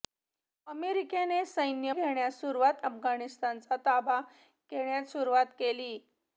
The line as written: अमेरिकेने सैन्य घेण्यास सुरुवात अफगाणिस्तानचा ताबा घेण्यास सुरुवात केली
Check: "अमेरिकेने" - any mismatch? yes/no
no